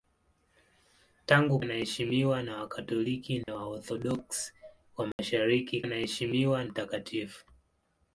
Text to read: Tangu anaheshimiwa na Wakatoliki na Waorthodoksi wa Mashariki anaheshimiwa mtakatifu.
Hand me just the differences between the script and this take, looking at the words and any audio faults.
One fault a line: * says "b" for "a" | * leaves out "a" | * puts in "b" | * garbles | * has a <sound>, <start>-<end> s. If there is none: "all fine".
* has a dropout, 3.4-3.5 s
* has a dropout, 5.1-5.2 s